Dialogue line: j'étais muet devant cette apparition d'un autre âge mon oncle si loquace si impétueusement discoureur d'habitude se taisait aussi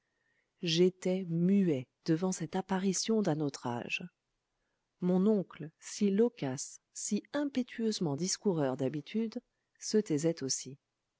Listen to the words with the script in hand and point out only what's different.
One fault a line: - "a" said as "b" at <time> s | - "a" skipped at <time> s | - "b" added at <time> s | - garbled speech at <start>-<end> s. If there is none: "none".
none